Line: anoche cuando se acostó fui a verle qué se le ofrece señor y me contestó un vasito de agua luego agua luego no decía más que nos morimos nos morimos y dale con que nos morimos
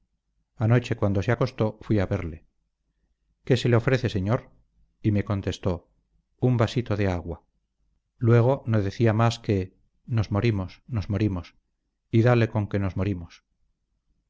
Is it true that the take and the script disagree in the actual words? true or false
true